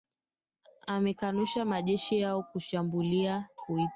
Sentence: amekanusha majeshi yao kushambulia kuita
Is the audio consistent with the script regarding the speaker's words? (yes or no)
yes